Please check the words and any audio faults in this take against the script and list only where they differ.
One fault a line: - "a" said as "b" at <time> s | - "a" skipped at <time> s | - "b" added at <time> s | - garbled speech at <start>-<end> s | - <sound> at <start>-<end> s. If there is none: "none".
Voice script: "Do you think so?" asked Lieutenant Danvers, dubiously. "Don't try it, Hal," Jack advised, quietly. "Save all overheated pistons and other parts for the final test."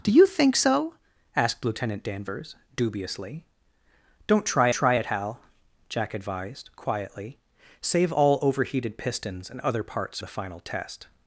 - "try" added at 4.7 s
- "for" skipped at 10.2 s